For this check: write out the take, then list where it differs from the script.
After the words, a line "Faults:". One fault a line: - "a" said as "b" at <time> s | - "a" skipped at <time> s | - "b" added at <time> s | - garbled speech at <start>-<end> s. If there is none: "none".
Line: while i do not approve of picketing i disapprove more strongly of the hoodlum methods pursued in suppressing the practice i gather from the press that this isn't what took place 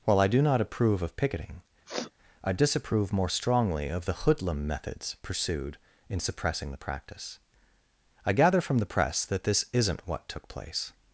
while i do not approve of picketing i disapprove more strongly of the hoodlum methods pursued in suppressing the practice i gather from the press that this isn't what took place
Faults:
none